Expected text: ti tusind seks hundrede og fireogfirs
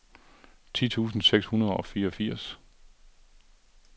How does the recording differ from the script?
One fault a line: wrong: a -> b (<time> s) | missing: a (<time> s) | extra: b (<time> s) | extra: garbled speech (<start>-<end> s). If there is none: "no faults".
no faults